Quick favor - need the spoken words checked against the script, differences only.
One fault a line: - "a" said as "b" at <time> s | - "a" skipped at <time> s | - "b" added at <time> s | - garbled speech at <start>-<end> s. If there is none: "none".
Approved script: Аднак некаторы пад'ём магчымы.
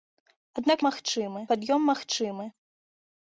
- "некаторы" said as "магчымы" at 0.9 s